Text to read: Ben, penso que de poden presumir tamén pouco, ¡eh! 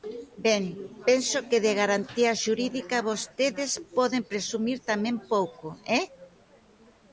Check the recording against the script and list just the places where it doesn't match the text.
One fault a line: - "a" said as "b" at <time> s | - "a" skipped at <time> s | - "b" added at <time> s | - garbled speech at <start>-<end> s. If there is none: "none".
- "garantía xurídica vostedes" added at 1.8 s